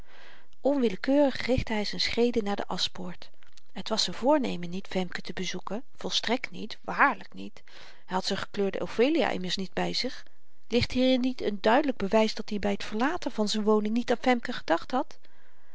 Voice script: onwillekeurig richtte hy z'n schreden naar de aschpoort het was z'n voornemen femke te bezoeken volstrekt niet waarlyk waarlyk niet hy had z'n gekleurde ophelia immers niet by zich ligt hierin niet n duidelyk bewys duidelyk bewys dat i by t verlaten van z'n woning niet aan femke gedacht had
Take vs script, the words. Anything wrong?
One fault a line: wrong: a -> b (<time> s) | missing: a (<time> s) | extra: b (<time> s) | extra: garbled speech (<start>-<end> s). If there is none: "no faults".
extra: niet (4.7 s)
missing: waarlyk (7.3 s)
missing: duidelyk bewys (12.3 s)